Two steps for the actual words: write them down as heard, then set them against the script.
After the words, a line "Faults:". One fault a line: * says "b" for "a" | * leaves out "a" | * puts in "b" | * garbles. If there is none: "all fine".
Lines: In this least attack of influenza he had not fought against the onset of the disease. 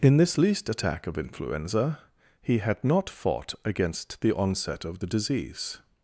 In this least attack of influenza he had not fought against the onset of the disease.
Faults:
all fine